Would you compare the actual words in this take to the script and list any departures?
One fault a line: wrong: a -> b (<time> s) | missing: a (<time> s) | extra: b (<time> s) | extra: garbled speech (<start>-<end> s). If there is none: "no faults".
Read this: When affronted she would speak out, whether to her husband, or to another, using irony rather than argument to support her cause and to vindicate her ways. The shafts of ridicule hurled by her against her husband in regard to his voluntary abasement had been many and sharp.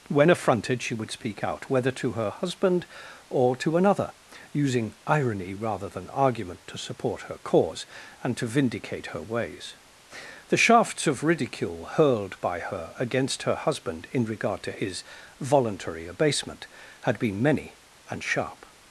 no faults